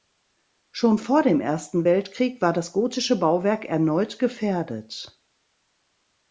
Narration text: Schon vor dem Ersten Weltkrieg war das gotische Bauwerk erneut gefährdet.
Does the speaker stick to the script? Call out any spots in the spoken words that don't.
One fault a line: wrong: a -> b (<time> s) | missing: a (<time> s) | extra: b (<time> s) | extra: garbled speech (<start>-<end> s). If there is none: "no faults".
no faults